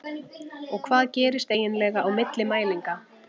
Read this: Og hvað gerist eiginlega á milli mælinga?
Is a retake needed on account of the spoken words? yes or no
no